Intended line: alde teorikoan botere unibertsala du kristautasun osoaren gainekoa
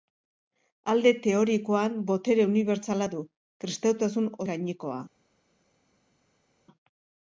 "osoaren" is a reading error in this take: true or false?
true